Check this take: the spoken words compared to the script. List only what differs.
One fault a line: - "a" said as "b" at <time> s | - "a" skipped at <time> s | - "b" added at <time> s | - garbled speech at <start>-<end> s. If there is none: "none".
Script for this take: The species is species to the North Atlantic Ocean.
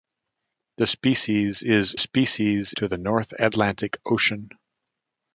none